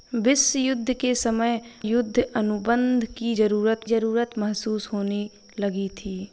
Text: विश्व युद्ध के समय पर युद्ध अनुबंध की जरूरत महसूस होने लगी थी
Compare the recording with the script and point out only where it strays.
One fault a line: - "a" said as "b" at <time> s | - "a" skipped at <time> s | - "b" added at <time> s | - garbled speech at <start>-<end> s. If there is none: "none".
- "पर" skipped at 1.6 s
- "जरूरत" added at 3.8 s